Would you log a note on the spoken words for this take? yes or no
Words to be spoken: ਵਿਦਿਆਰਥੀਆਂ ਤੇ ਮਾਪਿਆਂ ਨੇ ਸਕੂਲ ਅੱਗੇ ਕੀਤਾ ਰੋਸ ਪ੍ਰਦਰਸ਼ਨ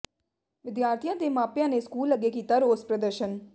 no